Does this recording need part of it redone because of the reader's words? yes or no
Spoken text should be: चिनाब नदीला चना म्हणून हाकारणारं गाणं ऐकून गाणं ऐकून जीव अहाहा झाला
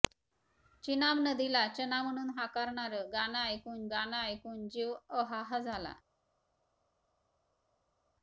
no